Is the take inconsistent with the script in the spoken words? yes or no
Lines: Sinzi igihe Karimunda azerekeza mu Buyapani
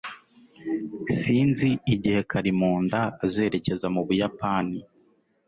no